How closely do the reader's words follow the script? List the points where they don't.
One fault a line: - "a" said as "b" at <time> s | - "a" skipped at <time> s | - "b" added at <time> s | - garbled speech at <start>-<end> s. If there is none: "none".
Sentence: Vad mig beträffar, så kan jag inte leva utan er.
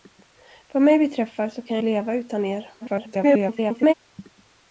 - "inte" skipped at 1.8 s
- garbled speech at 2.8-3.9 s